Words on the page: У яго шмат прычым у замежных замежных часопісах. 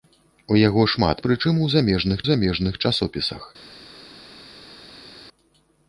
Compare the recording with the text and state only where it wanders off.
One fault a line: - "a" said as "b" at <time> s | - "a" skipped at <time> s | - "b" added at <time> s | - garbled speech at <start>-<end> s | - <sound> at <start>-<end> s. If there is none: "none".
none